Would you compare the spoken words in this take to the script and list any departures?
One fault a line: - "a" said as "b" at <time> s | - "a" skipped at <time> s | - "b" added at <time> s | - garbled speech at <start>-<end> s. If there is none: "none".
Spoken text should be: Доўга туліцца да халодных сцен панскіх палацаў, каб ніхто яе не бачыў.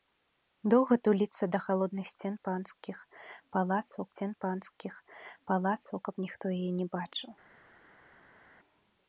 - "сцен панскіх палацаў" added at 4.1 s